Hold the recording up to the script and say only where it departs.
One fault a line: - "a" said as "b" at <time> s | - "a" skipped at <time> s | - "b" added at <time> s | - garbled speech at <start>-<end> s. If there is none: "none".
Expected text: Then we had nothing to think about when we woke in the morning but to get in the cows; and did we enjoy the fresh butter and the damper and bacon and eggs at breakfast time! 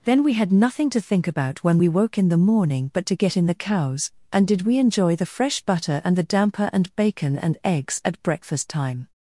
none